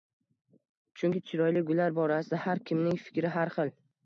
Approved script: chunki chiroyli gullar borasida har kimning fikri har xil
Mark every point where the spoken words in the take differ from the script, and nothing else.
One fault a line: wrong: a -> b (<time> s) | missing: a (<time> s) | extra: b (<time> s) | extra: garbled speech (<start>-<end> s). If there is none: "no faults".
no faults